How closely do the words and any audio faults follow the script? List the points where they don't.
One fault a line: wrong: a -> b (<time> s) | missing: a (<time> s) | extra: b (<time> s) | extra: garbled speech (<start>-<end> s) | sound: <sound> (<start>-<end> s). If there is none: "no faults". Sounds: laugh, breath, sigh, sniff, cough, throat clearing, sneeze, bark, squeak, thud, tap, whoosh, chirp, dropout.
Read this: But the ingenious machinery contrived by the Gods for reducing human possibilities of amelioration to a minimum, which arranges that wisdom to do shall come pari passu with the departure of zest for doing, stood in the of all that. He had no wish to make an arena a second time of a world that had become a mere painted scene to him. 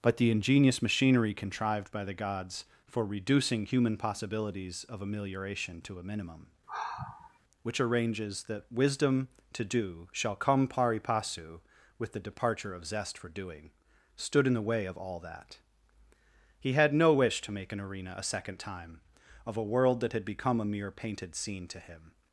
sound: sigh (6.7-7.4 s)
extra: way (14.6 s)